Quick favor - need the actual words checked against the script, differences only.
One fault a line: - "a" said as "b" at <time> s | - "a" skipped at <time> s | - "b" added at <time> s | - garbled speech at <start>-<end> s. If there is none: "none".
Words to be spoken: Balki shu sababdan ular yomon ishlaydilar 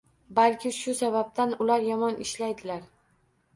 none